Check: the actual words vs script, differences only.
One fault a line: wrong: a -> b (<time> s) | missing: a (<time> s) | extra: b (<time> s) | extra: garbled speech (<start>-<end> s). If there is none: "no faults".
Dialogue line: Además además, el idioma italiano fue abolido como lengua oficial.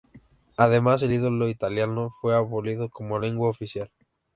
missing: además (1.0 s)